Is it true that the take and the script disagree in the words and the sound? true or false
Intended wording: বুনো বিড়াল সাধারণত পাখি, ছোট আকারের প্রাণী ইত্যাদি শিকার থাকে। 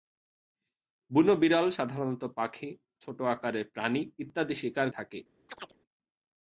true